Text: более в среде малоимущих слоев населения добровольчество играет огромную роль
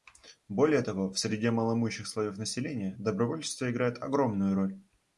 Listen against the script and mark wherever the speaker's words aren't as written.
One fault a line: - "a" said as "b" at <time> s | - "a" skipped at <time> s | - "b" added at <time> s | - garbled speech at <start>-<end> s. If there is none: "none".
- "того" added at 0.8 s